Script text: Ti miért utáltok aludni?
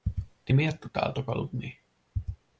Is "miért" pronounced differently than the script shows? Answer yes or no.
no